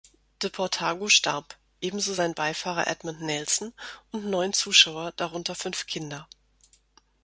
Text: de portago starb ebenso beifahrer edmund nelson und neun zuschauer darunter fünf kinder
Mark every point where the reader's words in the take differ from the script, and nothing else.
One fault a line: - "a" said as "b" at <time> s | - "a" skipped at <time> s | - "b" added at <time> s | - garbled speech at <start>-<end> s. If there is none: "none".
- "sein" added at 2.1 s